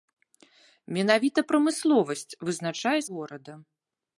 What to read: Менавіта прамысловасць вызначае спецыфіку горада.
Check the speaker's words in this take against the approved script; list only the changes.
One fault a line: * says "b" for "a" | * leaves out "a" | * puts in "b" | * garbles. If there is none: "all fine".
* leaves out "спецыфіку"